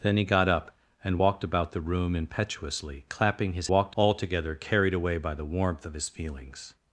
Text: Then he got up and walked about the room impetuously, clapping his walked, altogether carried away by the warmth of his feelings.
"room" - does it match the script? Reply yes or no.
yes